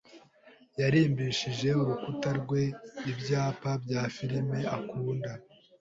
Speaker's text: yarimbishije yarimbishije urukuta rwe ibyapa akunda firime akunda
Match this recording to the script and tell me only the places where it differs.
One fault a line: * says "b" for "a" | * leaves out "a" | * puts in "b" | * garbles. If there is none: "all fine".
* leaves out "yarimbishije"
* says "bya" for "akunda"